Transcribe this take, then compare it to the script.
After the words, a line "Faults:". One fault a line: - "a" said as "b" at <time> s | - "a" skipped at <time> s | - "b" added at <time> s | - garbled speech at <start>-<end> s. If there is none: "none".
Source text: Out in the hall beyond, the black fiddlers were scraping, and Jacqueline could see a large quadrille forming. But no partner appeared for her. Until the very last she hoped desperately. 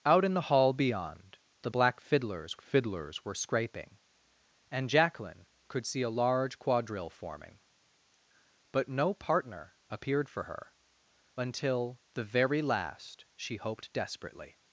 Out in the hall beyond, the black fiddlers fiddlers were scraping, and Jacqueline could see a large quadrille forming. But no partner appeared for her. Until the very last she hoped desperately.
Faults:
- "fiddlers" added at 2.6 s